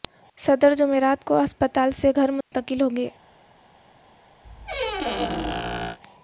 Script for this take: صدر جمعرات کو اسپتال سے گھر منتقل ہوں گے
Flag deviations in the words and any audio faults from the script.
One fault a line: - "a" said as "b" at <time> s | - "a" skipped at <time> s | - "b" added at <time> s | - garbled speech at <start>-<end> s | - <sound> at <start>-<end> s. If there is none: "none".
- dropout at 2.4-2.5 s
- squeak at 4.4-6.0 s